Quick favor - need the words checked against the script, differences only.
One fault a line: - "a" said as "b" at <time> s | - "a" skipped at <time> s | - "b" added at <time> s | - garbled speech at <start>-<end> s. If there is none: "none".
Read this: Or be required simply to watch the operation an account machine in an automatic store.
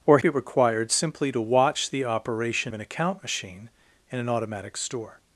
none